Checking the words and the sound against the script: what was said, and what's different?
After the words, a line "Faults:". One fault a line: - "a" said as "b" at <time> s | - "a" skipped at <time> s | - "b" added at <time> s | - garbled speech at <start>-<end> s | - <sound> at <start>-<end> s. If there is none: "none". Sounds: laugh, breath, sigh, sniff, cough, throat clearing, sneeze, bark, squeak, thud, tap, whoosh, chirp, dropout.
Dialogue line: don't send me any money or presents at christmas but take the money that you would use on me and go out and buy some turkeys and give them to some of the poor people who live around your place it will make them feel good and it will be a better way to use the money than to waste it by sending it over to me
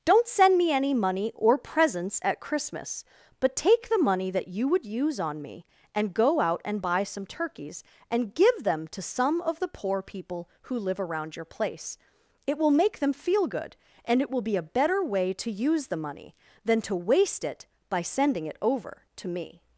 don't send me any money or presents at christmas but take the money that you would use on me and go out and buy some turkeys and give them to some of the poor people who live around your place it will make them feel good and it will be a better way to use the money than to waste it by sending it over to me
Faults:
none